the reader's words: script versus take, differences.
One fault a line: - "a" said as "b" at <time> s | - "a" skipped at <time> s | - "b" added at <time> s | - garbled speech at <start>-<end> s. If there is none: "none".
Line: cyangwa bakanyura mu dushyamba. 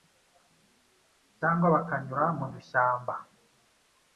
none